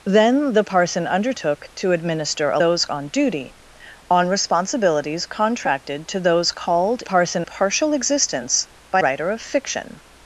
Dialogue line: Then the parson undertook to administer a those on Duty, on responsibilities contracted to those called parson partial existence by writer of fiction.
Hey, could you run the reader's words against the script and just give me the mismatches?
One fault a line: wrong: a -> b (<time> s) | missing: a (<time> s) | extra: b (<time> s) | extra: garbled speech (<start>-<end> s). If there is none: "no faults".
no faults